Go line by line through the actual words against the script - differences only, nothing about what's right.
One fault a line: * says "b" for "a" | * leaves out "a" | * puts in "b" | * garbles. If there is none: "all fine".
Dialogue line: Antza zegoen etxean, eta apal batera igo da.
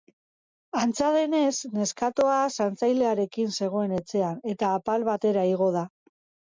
* puts in "denez neskatoa zaintzailearekin"